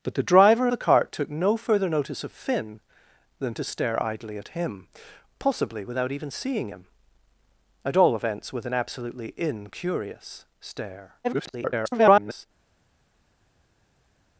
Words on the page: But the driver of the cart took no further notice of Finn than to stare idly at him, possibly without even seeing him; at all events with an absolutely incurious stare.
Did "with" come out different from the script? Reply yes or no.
no